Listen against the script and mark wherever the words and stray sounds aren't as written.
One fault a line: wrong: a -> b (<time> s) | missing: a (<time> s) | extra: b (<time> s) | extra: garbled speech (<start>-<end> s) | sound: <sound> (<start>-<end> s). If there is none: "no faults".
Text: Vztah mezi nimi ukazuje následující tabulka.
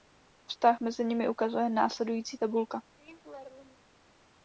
sound: laugh (3.0-3.9 s)